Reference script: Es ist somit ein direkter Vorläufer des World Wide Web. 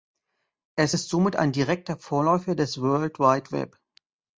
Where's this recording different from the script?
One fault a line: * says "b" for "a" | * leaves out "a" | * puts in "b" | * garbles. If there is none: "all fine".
all fine